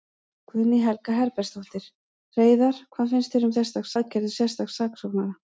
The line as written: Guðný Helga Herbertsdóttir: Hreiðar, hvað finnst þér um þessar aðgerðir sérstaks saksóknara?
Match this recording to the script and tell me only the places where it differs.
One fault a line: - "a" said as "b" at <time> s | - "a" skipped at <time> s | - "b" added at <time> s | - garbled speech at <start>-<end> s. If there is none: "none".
- "þessar" said as "sérstaks" at 3.6 s